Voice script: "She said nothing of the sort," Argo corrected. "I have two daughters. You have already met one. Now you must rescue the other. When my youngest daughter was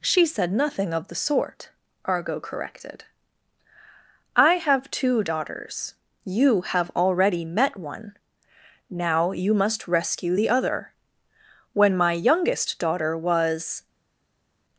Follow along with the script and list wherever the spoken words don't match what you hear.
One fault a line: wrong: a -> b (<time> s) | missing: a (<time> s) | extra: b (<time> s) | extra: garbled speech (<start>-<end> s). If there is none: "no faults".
no faults